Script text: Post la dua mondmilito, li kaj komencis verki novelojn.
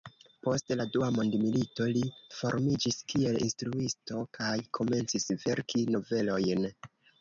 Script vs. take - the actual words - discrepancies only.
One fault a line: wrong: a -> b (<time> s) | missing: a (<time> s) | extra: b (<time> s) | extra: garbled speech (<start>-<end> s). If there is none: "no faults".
extra: formiĝis kiel instruisto (2.4 s)